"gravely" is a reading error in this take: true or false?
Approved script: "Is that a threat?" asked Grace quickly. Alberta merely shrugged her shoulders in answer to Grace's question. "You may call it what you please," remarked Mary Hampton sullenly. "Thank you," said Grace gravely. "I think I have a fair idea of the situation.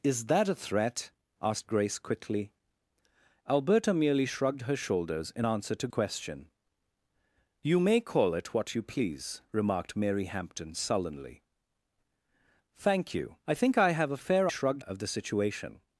true